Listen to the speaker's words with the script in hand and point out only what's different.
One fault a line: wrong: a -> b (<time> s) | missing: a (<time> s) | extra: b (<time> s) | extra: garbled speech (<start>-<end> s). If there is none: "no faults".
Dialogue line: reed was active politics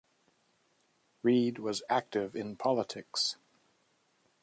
extra: in (2.3 s)